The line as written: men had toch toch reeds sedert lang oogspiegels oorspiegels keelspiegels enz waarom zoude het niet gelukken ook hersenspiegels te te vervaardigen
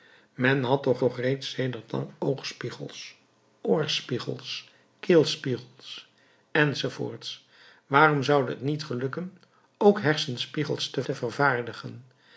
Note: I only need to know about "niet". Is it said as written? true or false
true